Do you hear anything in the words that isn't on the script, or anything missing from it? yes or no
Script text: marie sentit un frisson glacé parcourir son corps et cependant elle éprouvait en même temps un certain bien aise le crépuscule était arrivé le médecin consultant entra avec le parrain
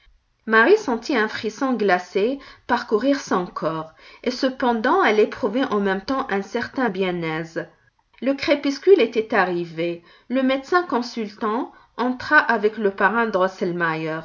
no